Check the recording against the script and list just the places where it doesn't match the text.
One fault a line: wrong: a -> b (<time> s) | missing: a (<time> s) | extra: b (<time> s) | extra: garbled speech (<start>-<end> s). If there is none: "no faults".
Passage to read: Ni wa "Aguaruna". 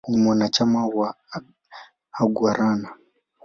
extra: mwanachama (0.1 s)